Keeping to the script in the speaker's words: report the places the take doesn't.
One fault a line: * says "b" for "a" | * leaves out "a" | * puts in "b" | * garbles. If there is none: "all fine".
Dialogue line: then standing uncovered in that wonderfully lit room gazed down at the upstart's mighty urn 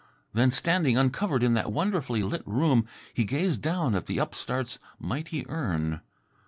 * puts in "he"